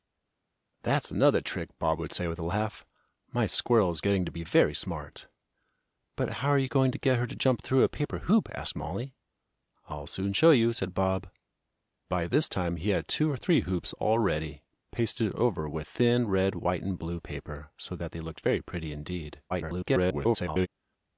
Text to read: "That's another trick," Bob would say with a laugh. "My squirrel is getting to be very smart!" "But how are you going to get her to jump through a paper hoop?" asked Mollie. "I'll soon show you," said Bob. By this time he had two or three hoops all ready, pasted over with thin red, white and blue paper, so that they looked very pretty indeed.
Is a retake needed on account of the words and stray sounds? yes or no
yes